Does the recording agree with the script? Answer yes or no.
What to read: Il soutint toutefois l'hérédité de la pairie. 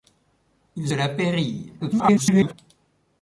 no